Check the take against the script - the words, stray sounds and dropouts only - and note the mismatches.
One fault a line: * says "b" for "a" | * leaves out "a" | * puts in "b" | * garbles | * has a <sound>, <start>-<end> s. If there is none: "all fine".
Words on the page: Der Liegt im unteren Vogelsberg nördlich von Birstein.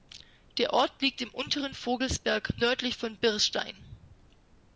* puts in "Ort"